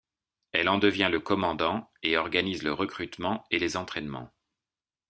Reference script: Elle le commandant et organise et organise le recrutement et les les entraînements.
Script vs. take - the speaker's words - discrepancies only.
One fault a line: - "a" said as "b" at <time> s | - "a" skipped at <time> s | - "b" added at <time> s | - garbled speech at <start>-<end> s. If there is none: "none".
- "en devient" added at 0.7 s
- "et organise" skipped at 2.6 s
- "les" skipped at 3.8 s